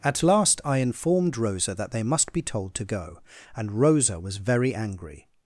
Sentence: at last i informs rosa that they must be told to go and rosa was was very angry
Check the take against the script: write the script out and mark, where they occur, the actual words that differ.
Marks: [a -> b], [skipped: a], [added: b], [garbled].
at last i [informs -> informed] rosa that they must be told to go and rosa was [skipped: was] very angry